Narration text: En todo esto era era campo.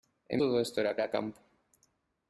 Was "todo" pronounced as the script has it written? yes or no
yes